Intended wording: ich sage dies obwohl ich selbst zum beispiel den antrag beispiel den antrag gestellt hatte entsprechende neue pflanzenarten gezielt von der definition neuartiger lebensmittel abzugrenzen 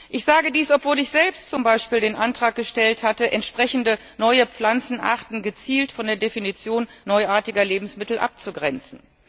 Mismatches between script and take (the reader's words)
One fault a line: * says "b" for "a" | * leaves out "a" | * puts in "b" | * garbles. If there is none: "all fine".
* leaves out "beispiel den antrag"